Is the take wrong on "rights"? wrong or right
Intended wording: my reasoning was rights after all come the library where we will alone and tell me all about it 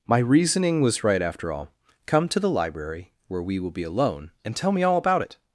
wrong